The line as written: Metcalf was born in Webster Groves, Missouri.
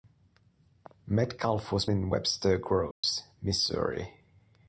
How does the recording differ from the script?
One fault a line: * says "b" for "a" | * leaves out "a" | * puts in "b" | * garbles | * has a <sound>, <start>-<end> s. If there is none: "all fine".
* leaves out "born"
* has a dropout, 2.9-3.0 s